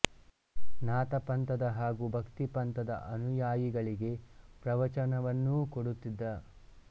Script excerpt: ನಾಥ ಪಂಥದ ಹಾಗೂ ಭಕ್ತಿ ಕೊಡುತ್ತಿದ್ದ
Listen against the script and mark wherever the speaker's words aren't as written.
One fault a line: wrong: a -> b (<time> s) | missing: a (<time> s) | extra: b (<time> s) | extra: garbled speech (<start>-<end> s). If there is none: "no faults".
extra: ಪಂಥದ ಅನುಯಾಯಿಗಳಿಗೆ ಪ್ರವಚನವನ್ನೂ (2.5 s)